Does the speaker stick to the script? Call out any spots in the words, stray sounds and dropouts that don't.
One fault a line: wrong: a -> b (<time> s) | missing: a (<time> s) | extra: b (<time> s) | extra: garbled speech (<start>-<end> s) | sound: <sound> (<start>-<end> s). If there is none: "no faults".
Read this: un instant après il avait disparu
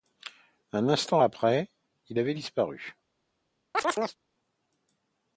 sound: chirp (3.7-4.2 s)